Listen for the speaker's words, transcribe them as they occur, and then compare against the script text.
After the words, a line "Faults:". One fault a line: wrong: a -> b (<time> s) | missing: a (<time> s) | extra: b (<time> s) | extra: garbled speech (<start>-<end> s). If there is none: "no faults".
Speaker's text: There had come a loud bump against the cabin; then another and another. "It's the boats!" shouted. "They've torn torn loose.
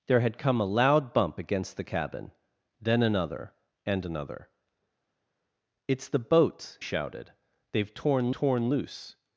There had come a loud bump against the cabin; then another and another. "It's the boats!" shouted. "They've torn torn loose.
Faults:
no faults